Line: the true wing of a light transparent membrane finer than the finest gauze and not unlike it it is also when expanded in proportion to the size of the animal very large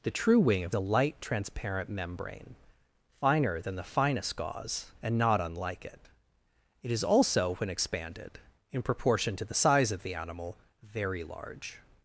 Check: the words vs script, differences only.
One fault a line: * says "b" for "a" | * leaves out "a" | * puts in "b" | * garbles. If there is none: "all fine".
all fine